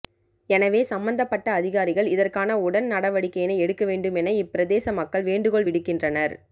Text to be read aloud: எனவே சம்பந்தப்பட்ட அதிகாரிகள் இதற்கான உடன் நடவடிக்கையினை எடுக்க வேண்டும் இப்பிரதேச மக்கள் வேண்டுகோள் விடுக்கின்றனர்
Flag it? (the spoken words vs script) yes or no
yes